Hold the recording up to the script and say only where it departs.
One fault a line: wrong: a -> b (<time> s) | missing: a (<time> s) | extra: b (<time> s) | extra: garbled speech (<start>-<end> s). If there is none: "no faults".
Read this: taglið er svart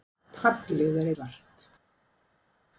no faults